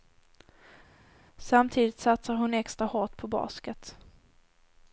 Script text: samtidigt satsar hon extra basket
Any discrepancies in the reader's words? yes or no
yes